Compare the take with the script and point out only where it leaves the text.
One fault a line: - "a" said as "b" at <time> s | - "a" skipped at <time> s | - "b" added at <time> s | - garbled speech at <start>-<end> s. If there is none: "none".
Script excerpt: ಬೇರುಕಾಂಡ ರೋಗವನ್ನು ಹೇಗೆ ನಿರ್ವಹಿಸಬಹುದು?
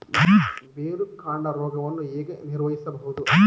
none